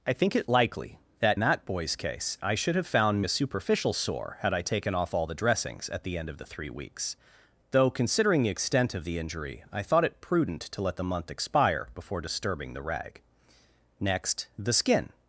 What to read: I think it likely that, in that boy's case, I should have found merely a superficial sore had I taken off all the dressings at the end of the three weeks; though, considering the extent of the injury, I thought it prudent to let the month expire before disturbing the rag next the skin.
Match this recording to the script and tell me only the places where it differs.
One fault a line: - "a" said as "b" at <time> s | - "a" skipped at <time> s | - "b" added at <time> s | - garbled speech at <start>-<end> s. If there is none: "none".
- "in" skipped at 1.4 s
- "merely" skipped at 3.2 s